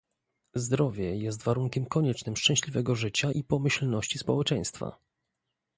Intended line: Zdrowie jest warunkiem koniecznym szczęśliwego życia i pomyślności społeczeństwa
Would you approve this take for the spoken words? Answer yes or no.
yes